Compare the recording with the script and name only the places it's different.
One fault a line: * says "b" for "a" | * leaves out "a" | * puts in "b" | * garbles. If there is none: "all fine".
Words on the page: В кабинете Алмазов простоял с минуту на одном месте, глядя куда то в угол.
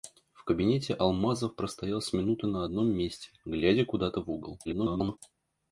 * garbles